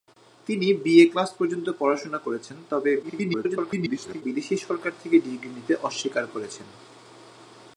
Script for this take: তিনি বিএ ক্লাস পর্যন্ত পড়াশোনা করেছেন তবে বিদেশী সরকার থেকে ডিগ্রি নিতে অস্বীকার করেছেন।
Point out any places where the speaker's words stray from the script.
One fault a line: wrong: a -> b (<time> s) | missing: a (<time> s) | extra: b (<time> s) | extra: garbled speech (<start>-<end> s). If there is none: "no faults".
extra: garbled speech (3.0-4.2 s)